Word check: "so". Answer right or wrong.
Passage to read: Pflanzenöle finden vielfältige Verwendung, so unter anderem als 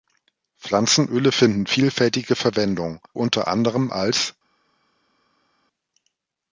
wrong